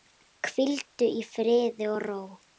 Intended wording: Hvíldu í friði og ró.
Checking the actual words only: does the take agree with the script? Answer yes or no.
yes